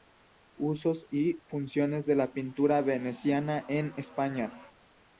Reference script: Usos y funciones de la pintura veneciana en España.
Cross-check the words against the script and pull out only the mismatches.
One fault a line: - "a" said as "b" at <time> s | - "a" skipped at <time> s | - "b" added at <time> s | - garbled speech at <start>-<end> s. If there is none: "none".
none